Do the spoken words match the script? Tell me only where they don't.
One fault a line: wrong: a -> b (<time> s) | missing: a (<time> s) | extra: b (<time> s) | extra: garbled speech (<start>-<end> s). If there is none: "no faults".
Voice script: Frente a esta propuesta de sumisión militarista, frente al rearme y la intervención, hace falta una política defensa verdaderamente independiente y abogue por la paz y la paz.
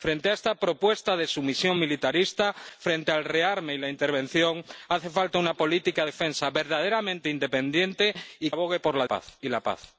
no faults